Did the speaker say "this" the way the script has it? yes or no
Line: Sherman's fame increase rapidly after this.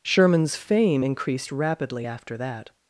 no